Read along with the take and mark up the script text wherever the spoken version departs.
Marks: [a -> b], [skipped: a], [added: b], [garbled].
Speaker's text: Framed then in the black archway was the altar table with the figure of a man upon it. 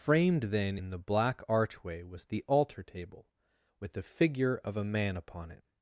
Framed then in the black archway was the altar table with the figure of a man upon it.